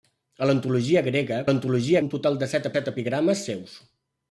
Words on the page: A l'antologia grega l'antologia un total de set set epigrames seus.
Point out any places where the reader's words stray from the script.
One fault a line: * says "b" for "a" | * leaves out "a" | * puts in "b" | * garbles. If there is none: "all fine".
all fine